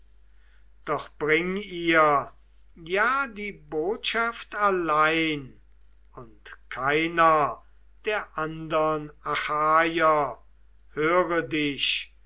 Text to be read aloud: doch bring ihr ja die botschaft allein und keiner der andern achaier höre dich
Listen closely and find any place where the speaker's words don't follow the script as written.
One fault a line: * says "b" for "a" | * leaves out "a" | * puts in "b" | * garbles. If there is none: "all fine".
all fine